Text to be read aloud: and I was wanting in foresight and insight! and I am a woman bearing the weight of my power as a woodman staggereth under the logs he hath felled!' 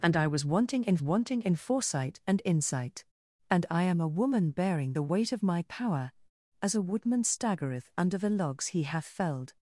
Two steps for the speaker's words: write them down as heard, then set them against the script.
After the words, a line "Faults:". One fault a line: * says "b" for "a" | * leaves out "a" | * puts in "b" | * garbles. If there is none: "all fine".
and I was wanting in wanting in foresight and insight! and I am a woman bearing the weight of my power as a woodman staggereth under the logs he hath felled!'
Faults:
* puts in "wanting in"